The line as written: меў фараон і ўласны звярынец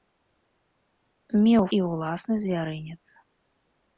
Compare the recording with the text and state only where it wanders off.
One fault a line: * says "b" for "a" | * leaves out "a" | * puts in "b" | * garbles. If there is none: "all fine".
* leaves out "фараон"